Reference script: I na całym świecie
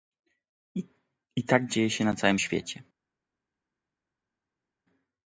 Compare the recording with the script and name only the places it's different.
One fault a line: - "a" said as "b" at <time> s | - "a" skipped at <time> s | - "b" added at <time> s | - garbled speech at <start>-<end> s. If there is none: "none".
- "tak dzieje się" added at 1.4 s